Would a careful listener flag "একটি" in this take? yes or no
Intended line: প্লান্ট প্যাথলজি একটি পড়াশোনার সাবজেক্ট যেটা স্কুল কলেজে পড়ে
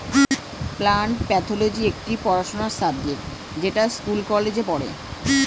no